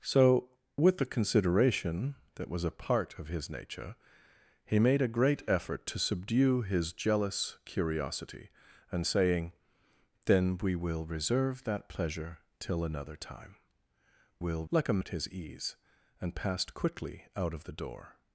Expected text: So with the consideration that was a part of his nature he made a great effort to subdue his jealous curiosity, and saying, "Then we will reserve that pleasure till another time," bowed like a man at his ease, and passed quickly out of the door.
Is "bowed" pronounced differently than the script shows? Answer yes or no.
yes